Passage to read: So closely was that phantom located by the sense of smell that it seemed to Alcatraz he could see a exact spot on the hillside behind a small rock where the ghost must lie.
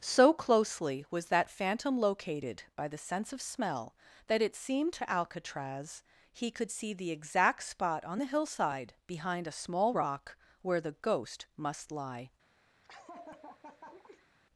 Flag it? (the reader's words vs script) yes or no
yes